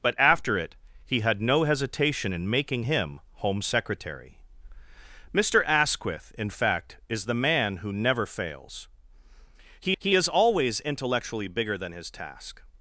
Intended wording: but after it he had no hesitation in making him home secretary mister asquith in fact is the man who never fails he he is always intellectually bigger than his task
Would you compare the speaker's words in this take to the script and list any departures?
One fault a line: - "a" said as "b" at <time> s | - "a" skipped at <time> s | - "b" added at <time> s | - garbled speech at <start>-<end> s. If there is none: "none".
none